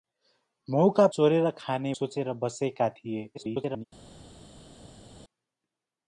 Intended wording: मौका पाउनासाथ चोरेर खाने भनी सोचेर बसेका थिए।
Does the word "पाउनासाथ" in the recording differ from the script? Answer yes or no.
yes